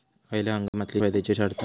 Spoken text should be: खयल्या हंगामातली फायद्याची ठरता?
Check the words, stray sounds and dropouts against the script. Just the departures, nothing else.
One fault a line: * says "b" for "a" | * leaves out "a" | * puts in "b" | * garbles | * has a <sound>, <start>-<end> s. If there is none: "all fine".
* has a dropout, 0.7-0.7 s